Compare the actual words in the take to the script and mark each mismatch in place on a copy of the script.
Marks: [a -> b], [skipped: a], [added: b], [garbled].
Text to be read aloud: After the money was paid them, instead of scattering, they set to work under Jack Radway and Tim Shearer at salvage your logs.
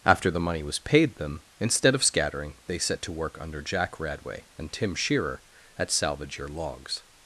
After the money was paid them, instead of scattering, they set to work under Jack Radway and Tim Shearer at salvage your logs.